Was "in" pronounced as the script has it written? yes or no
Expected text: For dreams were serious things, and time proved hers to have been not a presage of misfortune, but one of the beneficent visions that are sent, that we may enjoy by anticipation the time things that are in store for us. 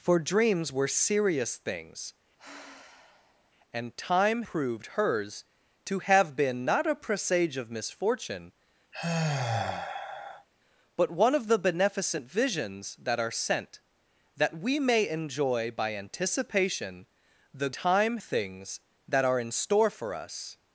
yes